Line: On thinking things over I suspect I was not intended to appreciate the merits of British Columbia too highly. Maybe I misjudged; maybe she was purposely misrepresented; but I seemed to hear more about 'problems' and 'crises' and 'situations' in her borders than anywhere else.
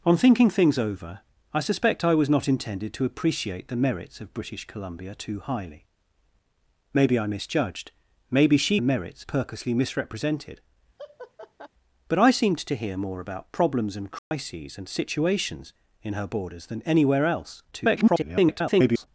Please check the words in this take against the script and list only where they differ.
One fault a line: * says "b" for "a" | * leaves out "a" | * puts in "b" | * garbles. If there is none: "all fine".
* says "merits" for "was"
* garbles